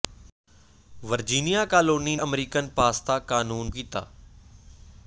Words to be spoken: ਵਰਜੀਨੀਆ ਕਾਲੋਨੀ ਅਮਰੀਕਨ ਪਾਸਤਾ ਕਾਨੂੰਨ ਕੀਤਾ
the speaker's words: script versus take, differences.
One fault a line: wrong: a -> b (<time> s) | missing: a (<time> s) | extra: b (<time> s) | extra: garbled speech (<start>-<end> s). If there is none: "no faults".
no faults